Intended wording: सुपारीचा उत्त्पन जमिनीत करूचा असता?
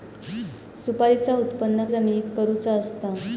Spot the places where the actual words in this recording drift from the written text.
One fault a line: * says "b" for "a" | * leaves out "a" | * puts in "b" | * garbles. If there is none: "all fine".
all fine